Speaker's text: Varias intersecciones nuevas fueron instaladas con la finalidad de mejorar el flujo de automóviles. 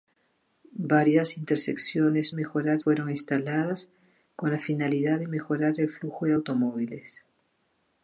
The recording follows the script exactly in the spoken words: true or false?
false